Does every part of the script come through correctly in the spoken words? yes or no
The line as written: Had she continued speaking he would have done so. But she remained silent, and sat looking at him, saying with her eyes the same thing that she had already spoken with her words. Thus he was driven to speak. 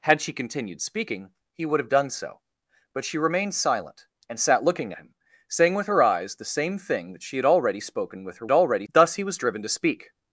no